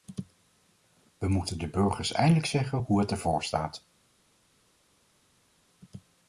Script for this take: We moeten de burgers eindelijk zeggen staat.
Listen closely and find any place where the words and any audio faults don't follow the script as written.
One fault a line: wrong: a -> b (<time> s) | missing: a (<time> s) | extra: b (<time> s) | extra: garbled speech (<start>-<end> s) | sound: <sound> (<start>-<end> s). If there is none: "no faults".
extra: hoe het ervoor (2.8 s)